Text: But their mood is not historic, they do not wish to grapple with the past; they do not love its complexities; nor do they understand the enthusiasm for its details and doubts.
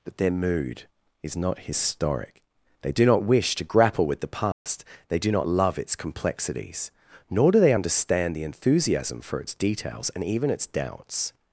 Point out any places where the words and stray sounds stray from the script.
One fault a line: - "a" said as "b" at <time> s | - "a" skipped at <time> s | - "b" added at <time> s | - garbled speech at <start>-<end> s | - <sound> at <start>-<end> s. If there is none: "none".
- dropout at 4.5-4.7 s
- "even its" added at 10.2 s